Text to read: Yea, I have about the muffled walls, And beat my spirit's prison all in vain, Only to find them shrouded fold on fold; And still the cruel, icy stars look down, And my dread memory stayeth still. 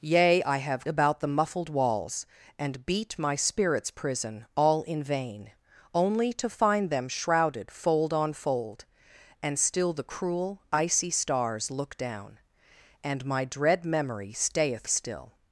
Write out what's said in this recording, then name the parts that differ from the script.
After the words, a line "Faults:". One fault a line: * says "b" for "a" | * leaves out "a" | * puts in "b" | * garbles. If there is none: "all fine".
Yea, I have about the muffled walls, And beat my spirit's prison all in vain, Only to find them shrouded fold on fold; And still the cruel, icy stars look down, And my dread memory stayeth still.
Faults:
all fine